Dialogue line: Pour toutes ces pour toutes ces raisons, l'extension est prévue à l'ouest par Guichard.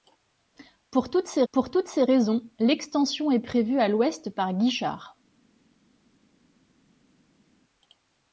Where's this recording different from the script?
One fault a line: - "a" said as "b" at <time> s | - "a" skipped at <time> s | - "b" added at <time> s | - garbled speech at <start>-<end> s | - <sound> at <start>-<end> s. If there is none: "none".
none